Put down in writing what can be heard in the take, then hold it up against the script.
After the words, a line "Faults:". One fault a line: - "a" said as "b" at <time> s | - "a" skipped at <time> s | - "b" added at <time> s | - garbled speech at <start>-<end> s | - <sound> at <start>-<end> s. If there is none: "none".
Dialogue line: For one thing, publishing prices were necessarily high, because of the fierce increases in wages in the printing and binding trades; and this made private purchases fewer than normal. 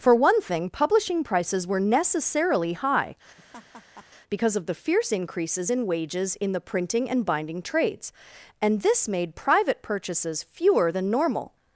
For one thing, publishing prices were necessarily high, because of the fierce increases in wages in the printing and binding trades; and this made private purchases fewer than normal.
Faults:
- laugh at 3.4-4.1 s